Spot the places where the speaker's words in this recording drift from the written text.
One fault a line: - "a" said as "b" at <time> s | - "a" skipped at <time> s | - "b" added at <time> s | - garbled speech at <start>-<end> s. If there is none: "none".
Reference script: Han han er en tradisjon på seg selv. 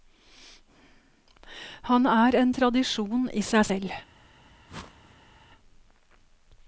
- "han" skipped at 2.1 s
- "på" said as "i" at 3.3 s